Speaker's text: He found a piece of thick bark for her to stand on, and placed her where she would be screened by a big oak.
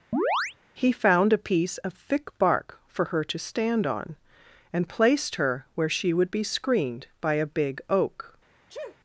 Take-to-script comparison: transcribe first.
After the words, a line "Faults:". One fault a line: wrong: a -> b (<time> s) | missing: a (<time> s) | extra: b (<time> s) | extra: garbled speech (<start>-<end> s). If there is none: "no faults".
He found a piece of thick bark for her to stand on, and placed her where she would be screened by a big oak.
Faults:
no faults